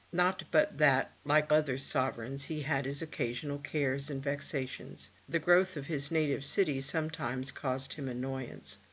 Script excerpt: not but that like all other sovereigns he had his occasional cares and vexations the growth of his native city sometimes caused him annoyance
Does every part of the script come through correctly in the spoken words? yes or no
no